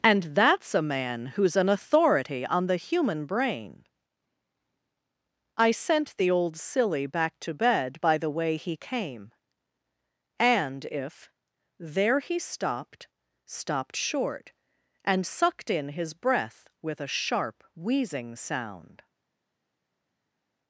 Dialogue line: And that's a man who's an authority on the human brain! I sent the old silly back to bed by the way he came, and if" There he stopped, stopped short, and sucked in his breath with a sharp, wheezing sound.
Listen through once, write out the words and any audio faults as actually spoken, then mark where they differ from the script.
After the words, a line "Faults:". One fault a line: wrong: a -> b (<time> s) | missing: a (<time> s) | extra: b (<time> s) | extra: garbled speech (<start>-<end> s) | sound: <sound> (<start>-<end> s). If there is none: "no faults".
And that's a man who's an authority on the human brain! I sent the old silly back to bed by the way he came, and if" There he stopped, stopped short, and sucked in his breath with a sharp, wheezing sound.
Faults:
no faults